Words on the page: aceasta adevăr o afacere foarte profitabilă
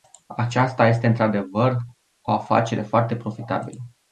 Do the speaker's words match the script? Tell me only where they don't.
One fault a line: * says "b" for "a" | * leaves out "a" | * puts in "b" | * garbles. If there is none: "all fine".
* puts in "este într"